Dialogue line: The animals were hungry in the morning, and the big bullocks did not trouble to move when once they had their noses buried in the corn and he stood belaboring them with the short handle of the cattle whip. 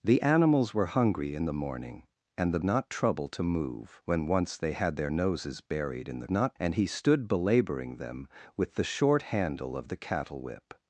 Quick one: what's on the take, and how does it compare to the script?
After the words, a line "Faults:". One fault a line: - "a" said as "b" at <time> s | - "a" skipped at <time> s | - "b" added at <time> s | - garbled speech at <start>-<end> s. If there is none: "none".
The animals were hungry in the morning, and the not trouble to move when once they had their noses buried in the not and he stood belaboring them with the short handle of the cattle whip.
Faults:
- "big bullocks did" skipped at 2.6 s
- "corn" said as "not" at 6.3 s